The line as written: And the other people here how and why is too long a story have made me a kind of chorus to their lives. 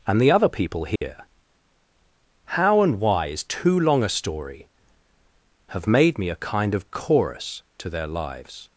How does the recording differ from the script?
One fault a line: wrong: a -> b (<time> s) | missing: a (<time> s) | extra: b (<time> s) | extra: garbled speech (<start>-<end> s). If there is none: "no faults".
no faults